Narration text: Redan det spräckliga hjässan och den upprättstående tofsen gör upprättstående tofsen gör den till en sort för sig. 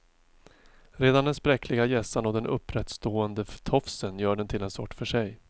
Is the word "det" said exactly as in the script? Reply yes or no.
no